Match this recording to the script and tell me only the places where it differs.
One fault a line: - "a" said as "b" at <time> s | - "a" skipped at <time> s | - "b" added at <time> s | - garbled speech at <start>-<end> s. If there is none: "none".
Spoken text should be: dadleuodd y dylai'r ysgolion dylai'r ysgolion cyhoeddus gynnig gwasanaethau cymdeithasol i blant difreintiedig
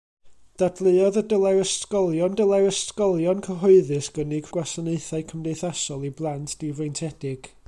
none